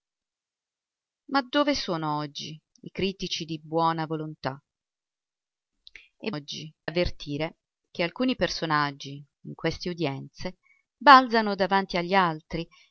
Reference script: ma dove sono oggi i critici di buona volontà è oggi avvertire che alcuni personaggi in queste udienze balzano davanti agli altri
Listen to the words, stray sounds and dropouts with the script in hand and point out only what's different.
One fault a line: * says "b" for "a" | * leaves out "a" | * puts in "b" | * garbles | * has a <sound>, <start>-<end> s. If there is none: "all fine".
all fine